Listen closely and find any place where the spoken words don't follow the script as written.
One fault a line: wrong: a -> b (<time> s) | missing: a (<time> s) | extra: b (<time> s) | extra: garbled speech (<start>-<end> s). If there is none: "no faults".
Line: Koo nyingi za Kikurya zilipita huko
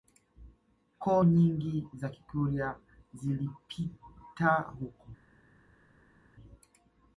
no faults